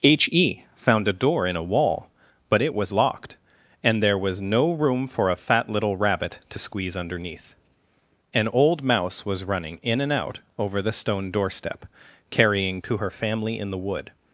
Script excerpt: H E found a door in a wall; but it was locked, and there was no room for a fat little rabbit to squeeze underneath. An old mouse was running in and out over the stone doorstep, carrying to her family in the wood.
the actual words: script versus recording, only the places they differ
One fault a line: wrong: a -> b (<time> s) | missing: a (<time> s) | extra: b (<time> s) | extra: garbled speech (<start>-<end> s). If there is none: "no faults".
no faults